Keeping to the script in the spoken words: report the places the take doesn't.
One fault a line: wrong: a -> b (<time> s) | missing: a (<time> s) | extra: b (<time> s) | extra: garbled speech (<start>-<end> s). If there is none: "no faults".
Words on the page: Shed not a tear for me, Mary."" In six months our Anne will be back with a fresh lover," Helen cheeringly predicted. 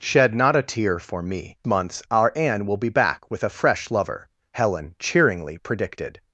missing: Mary In six (1.6 s)